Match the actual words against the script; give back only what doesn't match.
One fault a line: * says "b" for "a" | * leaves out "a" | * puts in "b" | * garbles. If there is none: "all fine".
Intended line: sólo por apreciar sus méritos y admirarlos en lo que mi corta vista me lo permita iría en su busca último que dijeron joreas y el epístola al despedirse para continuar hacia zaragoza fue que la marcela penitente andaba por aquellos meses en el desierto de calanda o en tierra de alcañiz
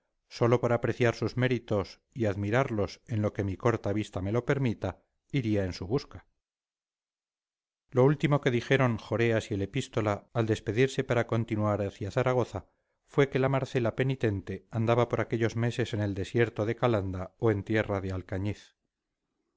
* puts in "lo"